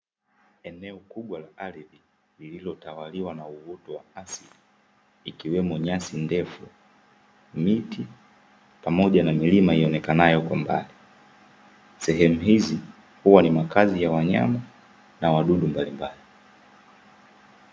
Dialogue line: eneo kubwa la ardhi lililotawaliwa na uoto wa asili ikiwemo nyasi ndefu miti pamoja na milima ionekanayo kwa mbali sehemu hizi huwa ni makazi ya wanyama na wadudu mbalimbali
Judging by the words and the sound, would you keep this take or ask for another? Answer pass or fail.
pass